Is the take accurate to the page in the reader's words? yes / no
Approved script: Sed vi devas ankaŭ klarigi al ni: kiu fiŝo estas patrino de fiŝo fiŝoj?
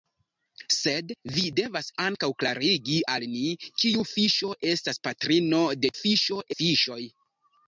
yes